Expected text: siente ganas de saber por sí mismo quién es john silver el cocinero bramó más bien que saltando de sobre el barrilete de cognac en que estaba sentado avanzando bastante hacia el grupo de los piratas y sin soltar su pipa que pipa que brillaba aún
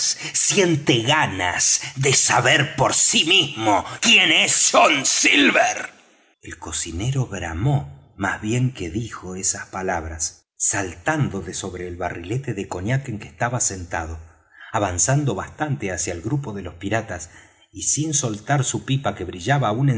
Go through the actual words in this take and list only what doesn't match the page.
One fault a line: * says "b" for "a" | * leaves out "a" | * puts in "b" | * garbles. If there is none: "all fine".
* puts in "dijo esas palabras"
* leaves out "pipa que"